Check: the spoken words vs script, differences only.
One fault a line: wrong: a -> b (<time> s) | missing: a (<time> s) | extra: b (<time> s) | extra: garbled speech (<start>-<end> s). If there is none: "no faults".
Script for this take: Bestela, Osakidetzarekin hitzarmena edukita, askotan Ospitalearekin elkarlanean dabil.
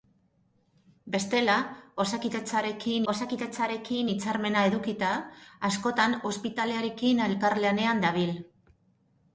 extra: Osakidetzarekin (3.1 s)